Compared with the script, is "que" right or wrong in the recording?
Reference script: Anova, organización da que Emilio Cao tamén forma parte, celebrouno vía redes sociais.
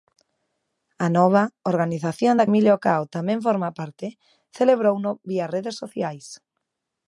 wrong